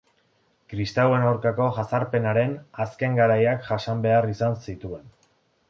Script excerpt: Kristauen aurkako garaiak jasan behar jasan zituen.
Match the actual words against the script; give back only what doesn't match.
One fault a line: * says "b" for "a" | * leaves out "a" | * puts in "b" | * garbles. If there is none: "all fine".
* puts in "jazarpenaren azken"
* says "izan" for "jasan"